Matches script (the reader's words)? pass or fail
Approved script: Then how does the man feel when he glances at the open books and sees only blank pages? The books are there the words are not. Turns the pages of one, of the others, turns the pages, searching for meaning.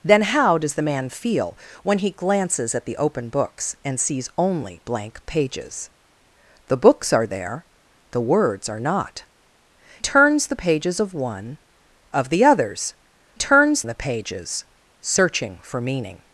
pass